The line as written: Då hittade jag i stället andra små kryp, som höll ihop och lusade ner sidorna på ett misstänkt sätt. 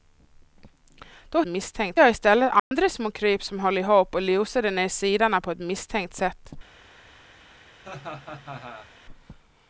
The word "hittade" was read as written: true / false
false